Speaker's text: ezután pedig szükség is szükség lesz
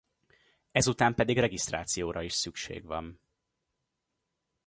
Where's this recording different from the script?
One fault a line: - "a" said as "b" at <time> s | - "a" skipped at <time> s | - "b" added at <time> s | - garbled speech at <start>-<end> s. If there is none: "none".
- "szükség" said as "regisztrációra" at 1.4 s
- "lesz" said as "van" at 2.8 s